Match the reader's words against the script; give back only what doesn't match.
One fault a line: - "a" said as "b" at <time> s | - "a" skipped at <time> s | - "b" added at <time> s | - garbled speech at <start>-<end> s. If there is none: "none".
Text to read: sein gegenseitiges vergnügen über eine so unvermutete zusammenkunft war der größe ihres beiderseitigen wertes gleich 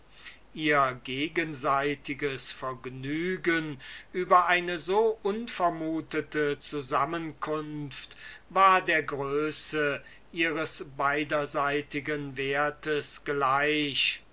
- "sein" said as "ihr" at 0.5 s